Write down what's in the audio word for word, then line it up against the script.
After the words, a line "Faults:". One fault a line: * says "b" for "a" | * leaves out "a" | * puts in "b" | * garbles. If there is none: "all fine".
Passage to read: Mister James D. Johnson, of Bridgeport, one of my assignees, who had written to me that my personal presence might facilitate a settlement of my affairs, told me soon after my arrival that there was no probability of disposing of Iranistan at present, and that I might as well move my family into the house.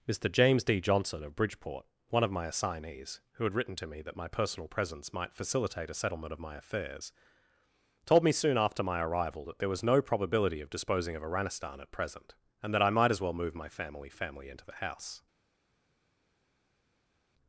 Mister James D. Johnson, of Bridgeport, one of my assignees, who had written to me that my personal presence might facilitate a settlement of my affairs, told me soon after my arrival that there was no probability of disposing of Iranistan at present, and that I might as well move my family family into the house.
Faults:
* puts in "family"